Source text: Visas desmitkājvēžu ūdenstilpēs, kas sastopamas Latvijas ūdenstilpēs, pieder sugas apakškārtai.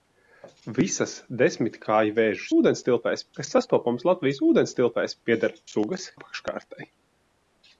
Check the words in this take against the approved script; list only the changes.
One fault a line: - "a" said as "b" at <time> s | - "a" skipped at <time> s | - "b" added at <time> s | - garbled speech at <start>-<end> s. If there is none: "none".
none